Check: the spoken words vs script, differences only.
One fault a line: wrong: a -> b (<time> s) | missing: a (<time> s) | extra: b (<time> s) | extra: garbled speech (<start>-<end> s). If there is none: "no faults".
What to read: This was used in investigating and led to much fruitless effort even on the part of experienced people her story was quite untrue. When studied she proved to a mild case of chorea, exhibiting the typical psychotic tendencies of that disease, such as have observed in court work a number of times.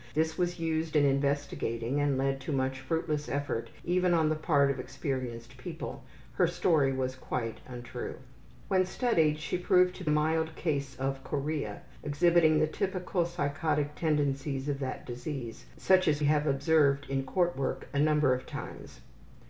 no faults